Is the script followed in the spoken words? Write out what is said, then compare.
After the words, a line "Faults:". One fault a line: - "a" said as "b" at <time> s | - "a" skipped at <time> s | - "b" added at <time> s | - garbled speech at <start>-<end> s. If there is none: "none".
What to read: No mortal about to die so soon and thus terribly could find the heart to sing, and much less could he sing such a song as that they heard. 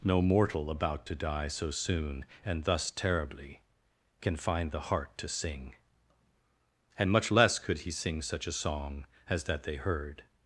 No mortal about to die so soon and thus terribly can find the heart to sing, and much less could he sing such a song as that they heard.
Faults:
- "could" said as "can" at 4.2 s